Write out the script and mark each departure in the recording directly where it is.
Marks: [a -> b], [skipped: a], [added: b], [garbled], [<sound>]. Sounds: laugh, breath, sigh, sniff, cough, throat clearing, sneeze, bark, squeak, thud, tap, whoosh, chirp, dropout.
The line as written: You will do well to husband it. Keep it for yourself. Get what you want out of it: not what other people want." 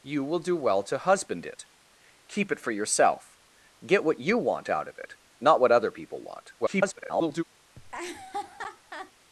You will do well to husband it. Keep it for yourself. Get what you want out of it: not what other people want." [garbled] [laugh]